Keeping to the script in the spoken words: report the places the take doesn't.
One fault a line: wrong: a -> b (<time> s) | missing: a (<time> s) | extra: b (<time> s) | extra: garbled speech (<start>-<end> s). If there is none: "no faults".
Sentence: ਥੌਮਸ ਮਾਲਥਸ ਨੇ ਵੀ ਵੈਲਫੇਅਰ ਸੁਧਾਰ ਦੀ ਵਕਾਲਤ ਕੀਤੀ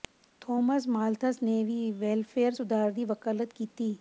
no faults